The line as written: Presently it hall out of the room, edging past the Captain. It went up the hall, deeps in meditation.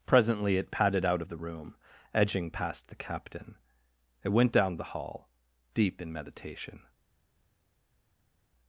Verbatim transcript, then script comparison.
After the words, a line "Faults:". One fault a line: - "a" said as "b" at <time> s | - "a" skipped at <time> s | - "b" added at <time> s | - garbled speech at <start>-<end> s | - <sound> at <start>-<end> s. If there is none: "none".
Presently it padded out of the room, edging past the Captain. It went down the hall, deep in meditation.
Faults:
- "hall" said as "padded" at 0.7 s
- "up" said as "down" at 4.5 s
- "deeps" said as "deep" at 5.7 s